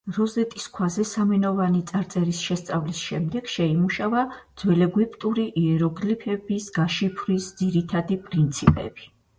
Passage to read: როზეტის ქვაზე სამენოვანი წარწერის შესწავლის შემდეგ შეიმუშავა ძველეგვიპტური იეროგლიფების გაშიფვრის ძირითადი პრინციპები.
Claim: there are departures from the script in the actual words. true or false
false